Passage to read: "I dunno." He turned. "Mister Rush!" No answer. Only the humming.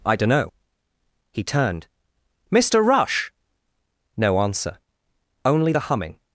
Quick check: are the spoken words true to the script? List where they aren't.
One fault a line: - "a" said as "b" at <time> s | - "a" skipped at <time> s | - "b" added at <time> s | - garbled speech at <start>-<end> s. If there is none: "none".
none